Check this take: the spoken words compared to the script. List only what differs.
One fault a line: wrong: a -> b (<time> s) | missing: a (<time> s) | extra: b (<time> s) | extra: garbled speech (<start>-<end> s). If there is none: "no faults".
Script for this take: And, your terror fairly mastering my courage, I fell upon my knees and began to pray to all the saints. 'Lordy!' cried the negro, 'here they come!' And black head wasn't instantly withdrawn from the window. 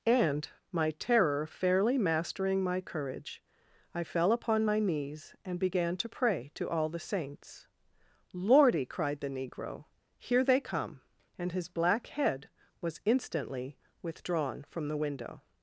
wrong: your -> my (0.7 s)
extra: his (11.5 s)
wrong: wasn't -> was (12.8 s)